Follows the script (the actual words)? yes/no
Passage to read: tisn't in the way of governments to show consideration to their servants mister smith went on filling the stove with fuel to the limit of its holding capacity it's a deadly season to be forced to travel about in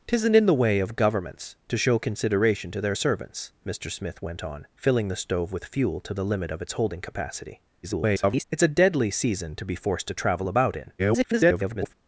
no